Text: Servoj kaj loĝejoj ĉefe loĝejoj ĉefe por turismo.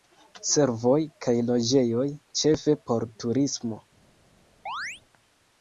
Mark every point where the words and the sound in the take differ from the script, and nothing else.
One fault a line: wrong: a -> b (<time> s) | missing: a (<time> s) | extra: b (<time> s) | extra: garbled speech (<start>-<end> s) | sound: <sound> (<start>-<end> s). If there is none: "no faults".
missing: loĝejoj ĉefe (2.8 s)
sound: chirp (4.7-5.0 s)